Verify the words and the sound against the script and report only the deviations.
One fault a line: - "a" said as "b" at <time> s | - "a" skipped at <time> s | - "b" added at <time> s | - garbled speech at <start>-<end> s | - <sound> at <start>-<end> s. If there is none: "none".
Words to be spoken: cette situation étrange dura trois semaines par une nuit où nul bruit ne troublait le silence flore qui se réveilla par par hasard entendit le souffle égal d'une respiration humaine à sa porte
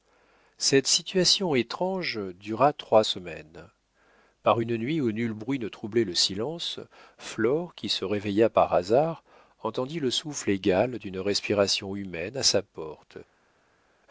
- "par" skipped at 8.7 s